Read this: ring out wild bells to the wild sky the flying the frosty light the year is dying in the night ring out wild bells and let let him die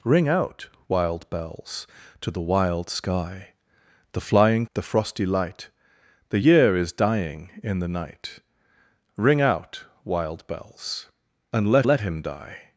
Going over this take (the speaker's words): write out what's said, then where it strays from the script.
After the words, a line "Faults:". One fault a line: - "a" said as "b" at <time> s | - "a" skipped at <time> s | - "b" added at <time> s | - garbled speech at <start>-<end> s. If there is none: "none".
ring out wild bells to the wild sky the flying the frosty light the year is dying in the night ring out wild bells and let let him die
Faults:
none